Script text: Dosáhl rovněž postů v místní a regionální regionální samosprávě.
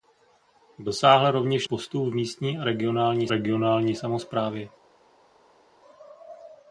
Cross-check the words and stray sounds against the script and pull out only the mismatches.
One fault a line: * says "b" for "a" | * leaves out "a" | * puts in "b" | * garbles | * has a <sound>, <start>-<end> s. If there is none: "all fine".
all fine